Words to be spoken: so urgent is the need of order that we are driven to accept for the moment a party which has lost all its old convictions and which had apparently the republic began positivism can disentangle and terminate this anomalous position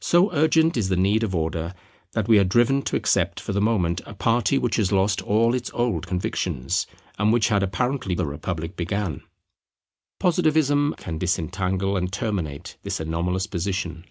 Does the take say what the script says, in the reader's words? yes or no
yes